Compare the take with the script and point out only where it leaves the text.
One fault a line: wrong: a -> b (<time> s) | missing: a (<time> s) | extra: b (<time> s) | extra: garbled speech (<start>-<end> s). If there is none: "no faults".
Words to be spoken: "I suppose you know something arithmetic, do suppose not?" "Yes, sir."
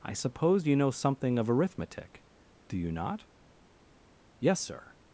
extra: of (1.4 s)
wrong: suppose -> you (2.8 s)